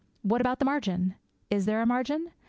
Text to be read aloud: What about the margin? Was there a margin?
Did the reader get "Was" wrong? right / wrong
wrong